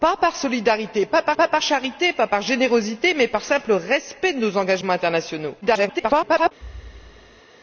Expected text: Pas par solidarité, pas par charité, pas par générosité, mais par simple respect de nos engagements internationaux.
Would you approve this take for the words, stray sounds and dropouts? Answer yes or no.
no